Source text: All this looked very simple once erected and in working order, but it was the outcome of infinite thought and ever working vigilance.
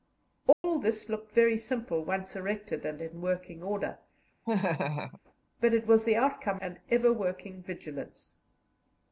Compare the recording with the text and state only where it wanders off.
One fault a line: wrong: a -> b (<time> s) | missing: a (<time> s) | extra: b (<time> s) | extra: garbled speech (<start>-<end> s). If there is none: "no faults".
missing: of infinite thought (6.6 s)